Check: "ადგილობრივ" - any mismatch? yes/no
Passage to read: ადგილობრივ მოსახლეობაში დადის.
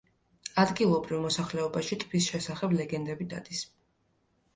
no